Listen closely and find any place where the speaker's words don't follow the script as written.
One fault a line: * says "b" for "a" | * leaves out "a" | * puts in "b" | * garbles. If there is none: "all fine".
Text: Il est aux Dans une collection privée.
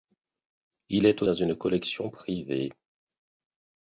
all fine